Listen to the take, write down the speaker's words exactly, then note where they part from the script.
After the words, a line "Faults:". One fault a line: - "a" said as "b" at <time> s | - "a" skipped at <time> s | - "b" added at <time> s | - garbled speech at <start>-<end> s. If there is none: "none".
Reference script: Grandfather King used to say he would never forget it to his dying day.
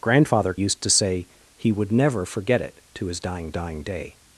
Grandfather Used to say he would never forget it to his dying dying day.
Faults:
- "King" skipped at 0.6 s
- "dying" added at 3.5 s